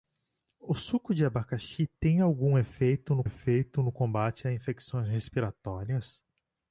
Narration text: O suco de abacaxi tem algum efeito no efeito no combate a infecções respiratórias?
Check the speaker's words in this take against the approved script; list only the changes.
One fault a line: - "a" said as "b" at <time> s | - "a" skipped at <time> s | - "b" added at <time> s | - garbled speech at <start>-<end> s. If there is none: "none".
none